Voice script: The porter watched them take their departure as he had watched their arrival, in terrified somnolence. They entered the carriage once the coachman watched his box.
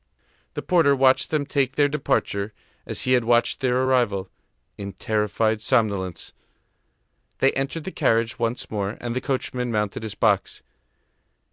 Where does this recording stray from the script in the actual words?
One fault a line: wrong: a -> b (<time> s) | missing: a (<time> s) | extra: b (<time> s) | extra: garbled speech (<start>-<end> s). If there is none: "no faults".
extra: more and (8.7 s)
wrong: watched -> mounted (9.7 s)